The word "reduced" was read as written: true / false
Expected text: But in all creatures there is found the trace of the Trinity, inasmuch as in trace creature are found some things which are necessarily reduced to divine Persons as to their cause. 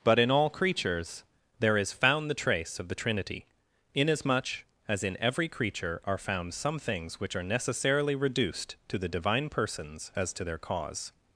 true